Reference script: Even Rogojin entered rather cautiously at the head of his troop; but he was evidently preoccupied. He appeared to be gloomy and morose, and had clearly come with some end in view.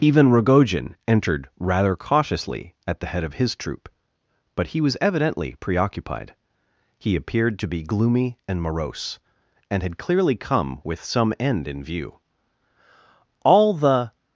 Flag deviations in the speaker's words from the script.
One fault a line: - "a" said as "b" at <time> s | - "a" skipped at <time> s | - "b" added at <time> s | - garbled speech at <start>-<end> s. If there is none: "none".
- "All the" added at 13.4 s